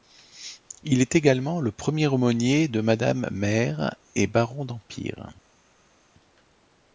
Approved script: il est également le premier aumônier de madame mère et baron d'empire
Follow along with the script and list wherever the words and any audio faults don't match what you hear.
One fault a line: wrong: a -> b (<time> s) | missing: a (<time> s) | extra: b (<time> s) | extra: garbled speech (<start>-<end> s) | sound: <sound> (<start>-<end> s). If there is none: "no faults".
no faults